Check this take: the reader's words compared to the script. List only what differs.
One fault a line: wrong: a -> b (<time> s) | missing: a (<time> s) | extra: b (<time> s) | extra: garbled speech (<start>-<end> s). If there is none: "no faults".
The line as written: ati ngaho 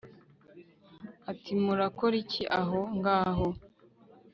extra: murakora iki aho (1.6 s)